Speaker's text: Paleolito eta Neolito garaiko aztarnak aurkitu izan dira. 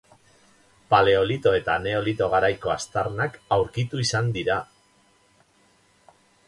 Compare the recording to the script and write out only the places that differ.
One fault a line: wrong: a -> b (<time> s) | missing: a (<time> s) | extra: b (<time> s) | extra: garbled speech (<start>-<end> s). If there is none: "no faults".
no faults